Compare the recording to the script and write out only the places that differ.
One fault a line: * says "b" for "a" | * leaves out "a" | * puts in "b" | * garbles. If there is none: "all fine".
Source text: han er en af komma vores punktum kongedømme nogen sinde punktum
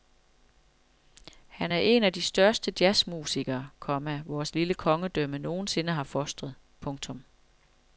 * puts in "de største jazzmusikere"
* says "lille" for "punktum"
* puts in "har fostret"